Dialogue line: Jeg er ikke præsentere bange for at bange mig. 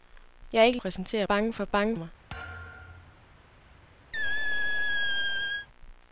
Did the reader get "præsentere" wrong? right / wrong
right